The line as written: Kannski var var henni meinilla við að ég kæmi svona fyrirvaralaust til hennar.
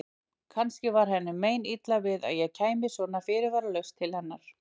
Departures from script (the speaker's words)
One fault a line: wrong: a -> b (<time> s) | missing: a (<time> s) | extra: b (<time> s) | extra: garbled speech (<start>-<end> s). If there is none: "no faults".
missing: var (1.1 s)